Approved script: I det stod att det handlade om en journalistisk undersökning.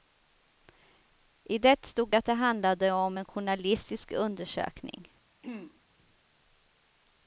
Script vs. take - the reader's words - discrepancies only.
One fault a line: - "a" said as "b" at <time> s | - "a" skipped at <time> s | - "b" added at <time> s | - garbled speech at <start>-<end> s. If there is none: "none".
none